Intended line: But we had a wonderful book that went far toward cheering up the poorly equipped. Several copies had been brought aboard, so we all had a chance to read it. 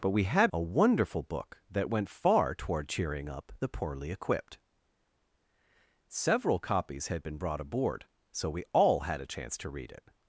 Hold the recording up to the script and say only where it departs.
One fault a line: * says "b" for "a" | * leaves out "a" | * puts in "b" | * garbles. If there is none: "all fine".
all fine